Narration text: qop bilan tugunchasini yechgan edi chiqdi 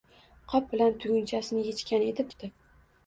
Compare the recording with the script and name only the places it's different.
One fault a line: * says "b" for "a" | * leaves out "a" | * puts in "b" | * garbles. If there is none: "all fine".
all fine